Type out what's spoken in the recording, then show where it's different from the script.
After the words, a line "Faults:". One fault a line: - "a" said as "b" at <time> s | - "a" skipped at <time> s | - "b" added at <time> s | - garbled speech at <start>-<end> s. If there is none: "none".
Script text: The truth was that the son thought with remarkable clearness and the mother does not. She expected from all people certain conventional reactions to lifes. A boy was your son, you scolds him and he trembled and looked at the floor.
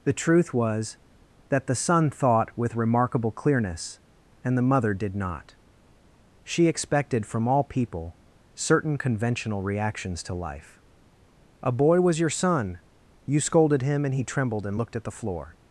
The truth was that the son thought with remarkable clearness and the mother did not. She expected from all people certain conventional reactions to life. A boy was your son, you scolded him and he trembled and looked at the floor.
Faults:
- "does" said as "did" at 4.9 s
- "lifes" said as "life" at 10.3 s
- "scolds" said as "scolded" at 13.4 s